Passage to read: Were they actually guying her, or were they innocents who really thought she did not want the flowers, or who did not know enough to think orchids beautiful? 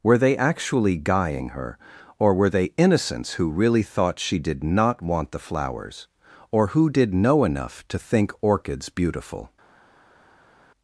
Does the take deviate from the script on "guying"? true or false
false